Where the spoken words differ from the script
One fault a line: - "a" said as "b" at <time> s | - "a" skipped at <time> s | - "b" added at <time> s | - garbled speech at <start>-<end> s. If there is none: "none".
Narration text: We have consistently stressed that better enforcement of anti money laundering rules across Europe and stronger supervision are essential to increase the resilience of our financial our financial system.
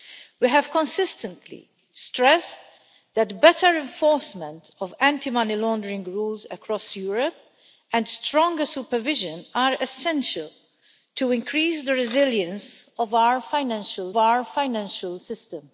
none